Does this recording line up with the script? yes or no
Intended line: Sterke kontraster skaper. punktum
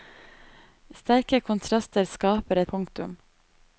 yes